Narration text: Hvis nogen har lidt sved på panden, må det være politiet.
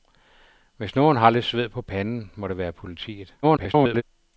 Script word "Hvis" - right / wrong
right